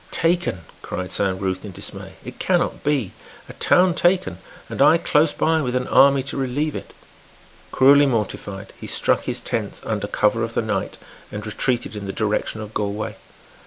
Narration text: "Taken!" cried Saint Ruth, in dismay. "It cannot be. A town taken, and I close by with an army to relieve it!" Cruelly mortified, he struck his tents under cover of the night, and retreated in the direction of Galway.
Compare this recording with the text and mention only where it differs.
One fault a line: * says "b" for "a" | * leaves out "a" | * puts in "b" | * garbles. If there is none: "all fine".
all fine